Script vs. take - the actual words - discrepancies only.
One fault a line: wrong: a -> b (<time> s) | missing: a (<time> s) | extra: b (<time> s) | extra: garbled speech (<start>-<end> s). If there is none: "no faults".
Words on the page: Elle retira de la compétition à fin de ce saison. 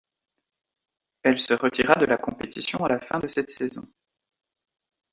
extra: se (1.4 s)
extra: la (2.9 s)
wrong: ce -> cette (3.3 s)